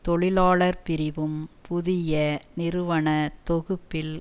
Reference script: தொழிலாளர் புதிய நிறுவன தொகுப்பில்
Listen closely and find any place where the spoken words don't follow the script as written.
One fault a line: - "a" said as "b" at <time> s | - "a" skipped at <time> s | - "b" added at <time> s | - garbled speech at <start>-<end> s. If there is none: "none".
- "பிரிவும்" added at 0.8 s